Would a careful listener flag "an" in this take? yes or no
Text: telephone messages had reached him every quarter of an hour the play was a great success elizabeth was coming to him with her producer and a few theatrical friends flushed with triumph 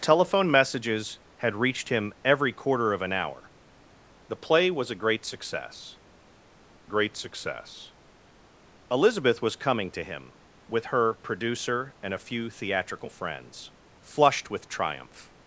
no